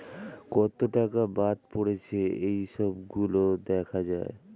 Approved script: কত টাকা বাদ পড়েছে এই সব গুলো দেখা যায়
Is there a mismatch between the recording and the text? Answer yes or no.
no